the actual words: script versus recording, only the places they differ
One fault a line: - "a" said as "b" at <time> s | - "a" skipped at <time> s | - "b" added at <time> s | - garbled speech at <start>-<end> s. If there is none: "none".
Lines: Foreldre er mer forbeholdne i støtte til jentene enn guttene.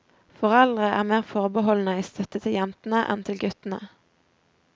- "til" added at 3.3 s